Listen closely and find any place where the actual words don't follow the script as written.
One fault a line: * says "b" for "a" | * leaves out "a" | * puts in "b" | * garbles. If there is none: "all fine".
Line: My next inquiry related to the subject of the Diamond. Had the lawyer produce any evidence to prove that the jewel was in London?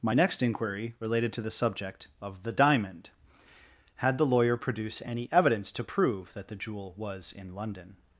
all fine